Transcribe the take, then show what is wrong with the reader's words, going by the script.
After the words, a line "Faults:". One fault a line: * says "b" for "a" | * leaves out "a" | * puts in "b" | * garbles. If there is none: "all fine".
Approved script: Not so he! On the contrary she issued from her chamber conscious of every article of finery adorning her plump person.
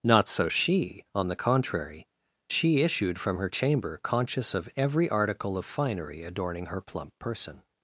Not so she! On the contrary she issued from her chamber conscious of every article of finery adorning her plump person.
Faults:
* says "she" for "he"